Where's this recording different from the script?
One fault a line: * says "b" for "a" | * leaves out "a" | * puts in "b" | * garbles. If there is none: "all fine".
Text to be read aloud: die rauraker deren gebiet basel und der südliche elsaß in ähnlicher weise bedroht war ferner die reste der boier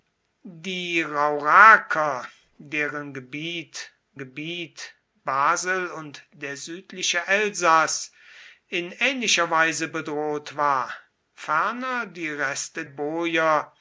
* puts in "gebiet"
* leaves out "der"